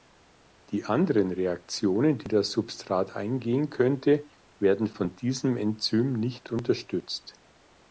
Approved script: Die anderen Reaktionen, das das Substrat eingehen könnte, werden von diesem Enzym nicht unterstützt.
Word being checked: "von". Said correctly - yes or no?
yes